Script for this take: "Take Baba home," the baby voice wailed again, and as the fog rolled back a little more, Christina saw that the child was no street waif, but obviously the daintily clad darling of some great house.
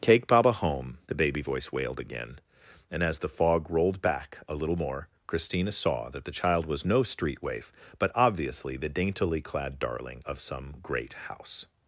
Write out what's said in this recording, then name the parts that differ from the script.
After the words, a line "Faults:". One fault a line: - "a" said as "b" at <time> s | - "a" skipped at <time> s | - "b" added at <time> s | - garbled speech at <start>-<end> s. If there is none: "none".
"Take Baba home," the baby voice wailed again, and as the fog rolled back a little more, Christina saw that the child was no street waif, but obviously the daintily clad darling of some great house.
Faults:
none